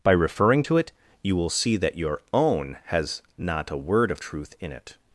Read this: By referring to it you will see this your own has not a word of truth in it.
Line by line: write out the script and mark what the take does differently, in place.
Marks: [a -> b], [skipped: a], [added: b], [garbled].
By referring to it you will see [this -> that] your own has not a word of truth in it.